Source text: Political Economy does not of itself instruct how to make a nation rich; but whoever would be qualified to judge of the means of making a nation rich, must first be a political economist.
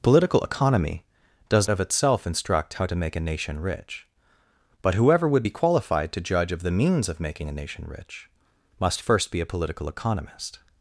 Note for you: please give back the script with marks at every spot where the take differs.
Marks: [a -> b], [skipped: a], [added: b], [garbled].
Political Economy does [skipped: not] of itself instruct how to make a nation rich; but whoever would be qualified to judge of the means of making a nation rich, must first be a political economist.